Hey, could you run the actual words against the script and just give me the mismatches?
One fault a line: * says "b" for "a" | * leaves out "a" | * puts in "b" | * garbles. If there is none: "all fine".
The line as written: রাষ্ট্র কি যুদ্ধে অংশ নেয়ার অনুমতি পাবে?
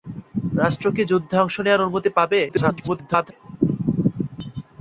* garbles